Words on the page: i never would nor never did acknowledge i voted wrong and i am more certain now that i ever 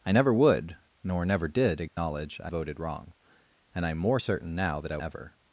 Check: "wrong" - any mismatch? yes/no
no